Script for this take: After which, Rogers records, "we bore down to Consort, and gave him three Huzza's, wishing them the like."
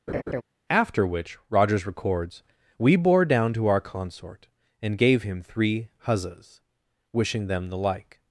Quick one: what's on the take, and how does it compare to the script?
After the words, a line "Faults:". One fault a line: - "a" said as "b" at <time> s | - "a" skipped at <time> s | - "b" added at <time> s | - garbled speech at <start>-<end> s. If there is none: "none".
After which, Rogers records, "we bore down to our Consort, and gave him three Huzza's, wishing them the like."
Faults:
- "our" added at 3.7 s